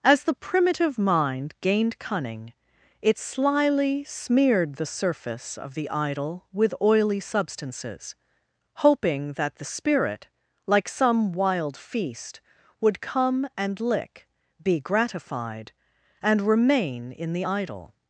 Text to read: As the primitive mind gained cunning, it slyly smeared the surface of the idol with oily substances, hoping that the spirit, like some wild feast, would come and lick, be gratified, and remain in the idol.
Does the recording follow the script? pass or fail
pass